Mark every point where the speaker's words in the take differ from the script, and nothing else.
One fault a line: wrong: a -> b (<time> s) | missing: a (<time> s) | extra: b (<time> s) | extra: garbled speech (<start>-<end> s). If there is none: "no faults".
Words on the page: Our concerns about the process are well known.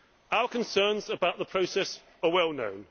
no faults